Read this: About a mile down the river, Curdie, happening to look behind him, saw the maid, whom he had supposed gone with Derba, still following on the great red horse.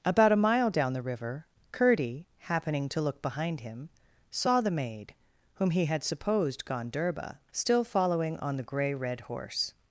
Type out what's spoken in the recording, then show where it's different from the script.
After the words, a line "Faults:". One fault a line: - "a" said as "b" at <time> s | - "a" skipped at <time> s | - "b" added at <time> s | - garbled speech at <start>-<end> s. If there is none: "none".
About a mile down the river, Curdie, happening to look behind him, saw the maid, whom he had supposed gone Derba, still following on the grey red horse.
Faults:
- "with" skipped at 6.9 s
- "great" said as "grey" at 8.6 s